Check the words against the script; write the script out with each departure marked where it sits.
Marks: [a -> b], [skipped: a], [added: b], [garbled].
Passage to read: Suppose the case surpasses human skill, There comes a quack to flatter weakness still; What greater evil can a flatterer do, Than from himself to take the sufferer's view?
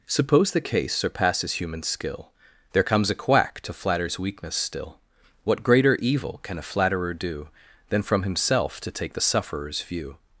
Suppose the case surpasses human skill, There comes a quack to [flatter -> flatters] weakness still; What greater evil can a flatterer do, Than from himself to take the sufferer's view?